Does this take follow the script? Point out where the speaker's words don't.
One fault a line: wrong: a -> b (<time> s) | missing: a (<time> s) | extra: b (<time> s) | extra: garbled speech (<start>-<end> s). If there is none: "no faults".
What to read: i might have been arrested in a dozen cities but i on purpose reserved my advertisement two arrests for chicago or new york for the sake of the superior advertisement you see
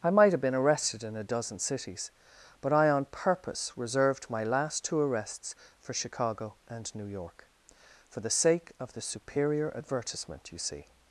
wrong: advertisement -> last (4.4 s)
wrong: or -> and (6.7 s)